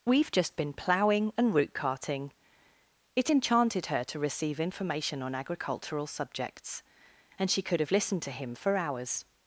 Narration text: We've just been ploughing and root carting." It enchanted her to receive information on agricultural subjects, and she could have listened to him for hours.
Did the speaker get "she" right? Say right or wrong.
right